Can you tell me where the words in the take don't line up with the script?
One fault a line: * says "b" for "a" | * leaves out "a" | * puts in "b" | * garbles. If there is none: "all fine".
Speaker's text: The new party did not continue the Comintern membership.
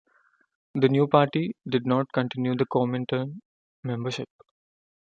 all fine